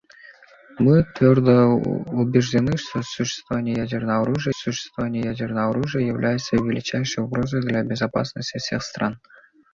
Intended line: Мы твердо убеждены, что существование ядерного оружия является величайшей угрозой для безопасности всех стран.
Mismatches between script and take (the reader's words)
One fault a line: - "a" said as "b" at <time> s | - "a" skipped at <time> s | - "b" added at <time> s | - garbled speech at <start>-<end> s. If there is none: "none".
- "существование ядерного оружия" added at 4.5 s